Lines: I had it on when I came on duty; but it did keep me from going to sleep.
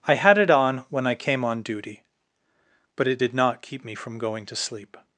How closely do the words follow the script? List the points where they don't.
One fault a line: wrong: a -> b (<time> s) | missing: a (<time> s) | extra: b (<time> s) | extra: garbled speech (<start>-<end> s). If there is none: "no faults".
extra: not (3.3 s)